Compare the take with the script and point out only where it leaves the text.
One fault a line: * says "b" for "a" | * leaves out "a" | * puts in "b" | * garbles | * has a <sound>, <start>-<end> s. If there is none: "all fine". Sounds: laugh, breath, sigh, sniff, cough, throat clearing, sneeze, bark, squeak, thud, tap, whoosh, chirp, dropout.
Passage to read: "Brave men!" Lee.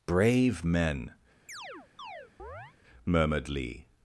* has a chirp, 1.5-2.7 s
* puts in "murmured"